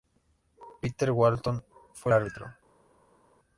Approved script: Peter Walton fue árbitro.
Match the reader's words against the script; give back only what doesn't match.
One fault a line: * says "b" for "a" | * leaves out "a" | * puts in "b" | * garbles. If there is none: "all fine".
all fine